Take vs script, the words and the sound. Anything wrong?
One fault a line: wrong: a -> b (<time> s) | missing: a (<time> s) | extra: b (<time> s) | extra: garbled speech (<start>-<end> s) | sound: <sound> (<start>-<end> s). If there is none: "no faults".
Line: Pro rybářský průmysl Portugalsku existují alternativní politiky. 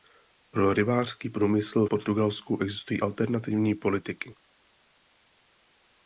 no faults